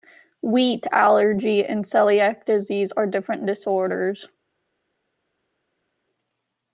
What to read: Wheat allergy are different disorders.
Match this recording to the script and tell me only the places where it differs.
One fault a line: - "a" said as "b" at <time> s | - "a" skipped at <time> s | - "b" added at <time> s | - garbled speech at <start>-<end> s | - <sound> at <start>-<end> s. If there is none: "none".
- "and celiac disease" added at 1.6 s